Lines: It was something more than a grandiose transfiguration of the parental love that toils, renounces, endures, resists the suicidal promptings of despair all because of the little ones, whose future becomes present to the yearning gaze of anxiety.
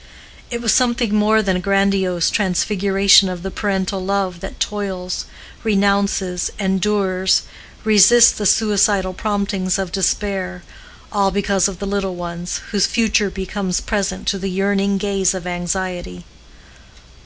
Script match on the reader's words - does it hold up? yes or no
yes